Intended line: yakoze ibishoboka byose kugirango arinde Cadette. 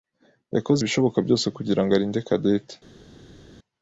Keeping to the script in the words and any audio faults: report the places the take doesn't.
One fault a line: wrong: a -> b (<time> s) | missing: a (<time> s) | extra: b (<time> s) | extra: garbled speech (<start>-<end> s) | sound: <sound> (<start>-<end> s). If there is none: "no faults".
no faults